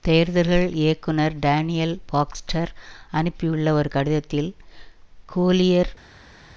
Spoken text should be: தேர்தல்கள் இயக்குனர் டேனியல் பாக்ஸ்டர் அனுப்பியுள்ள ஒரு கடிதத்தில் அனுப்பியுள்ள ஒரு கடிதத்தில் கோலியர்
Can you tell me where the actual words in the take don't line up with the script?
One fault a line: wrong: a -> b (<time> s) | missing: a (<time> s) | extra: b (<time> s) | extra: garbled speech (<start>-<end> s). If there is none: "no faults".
missing: அனுப்பியுள்ள ஒரு கடிதத்தில் (4.5 s)